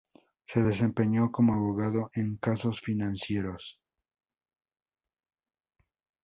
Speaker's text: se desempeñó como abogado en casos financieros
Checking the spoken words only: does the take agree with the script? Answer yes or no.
yes